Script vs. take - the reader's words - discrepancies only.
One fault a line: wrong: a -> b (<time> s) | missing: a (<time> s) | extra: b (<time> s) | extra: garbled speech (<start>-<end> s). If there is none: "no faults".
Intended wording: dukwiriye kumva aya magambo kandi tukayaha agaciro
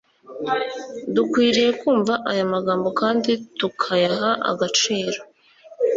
no faults